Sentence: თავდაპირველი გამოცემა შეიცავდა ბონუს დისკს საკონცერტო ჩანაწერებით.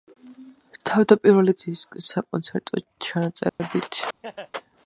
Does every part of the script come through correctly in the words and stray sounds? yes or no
no